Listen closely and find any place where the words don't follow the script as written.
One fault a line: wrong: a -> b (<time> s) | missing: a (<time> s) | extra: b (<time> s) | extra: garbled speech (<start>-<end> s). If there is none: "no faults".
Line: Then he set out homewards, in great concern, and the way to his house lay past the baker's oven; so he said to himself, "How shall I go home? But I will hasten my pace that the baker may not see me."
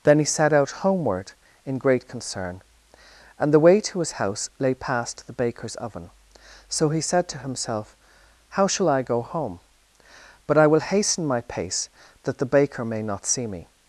wrong: homewards -> homeward (0.7 s)